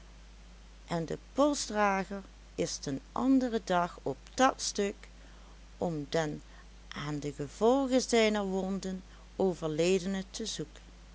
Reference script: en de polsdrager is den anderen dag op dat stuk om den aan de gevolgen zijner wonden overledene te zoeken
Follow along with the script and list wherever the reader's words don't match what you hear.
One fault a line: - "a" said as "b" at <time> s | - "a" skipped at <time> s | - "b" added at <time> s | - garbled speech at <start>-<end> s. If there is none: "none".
none